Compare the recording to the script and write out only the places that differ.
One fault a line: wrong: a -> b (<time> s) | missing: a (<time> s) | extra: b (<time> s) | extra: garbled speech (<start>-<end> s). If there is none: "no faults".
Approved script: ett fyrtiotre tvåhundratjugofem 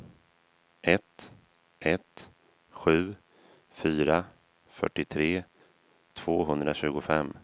extra: ett sju fyra (1.8 s)